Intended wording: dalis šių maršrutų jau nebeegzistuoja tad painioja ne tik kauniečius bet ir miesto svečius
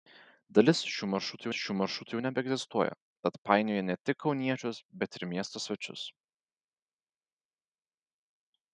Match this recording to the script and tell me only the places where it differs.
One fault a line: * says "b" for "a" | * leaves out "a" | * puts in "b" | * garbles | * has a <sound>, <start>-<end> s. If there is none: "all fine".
* puts in "šių maršrutų"